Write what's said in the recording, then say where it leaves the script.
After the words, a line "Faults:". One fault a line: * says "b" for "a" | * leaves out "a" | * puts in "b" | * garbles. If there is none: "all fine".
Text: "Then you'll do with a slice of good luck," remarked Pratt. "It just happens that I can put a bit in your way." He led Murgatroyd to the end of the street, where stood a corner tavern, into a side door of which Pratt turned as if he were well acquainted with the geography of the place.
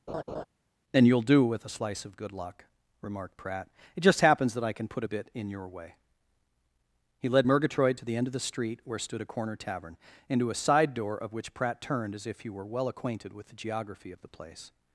"And you'll do with a slice of good luck," remarked Pratt. "It just happens that I can put a bit in your way." He led Murgatroyd to the end of the street, where stood a corner tavern, into a side door of which Pratt turned as if he were well acquainted with the geography of the place.
Faults:
* says "And" for "Then"